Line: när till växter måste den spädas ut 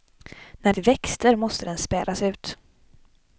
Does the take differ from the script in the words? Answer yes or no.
no